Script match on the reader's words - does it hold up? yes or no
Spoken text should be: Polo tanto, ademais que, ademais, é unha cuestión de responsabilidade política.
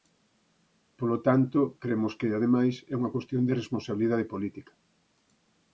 no